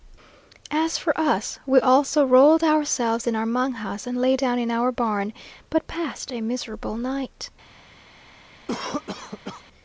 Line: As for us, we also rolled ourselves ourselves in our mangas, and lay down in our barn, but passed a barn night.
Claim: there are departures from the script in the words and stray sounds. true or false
true